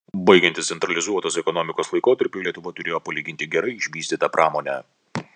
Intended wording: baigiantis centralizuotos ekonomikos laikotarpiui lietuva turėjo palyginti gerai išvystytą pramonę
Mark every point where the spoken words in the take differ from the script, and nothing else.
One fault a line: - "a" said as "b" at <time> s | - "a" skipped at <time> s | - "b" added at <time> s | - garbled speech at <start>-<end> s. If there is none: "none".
none